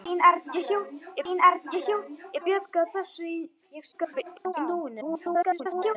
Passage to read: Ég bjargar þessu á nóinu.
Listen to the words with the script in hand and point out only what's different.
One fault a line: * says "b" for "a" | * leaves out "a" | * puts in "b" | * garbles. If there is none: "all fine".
* puts in "ég"
* garbles
* garbles